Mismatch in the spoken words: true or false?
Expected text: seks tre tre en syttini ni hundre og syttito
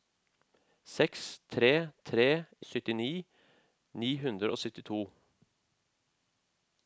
true